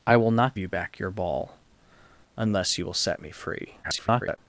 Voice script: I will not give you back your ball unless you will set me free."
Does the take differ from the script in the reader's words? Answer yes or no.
yes